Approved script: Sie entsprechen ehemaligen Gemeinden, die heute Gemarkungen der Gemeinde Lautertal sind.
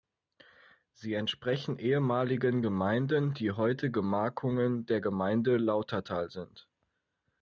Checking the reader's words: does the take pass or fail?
pass